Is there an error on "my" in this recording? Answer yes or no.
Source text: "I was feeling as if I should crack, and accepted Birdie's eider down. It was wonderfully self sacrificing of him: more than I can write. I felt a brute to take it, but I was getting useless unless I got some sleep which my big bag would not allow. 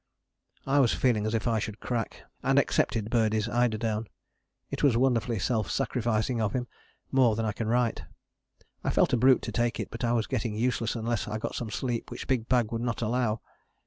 yes